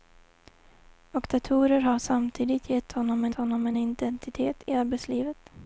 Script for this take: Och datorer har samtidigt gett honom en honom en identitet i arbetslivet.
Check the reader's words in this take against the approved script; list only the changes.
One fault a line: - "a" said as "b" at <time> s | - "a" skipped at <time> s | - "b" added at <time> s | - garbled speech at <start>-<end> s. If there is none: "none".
none